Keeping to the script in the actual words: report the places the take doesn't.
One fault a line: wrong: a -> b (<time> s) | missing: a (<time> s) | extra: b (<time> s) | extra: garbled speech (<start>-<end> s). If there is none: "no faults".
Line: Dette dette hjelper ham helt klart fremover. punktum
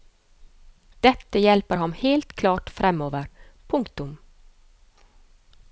missing: dette (1.4 s)